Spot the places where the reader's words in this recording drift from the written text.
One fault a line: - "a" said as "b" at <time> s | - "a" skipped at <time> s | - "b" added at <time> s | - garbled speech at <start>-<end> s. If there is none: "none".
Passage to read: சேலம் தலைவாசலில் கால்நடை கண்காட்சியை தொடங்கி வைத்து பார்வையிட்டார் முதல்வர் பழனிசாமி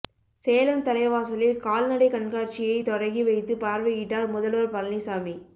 none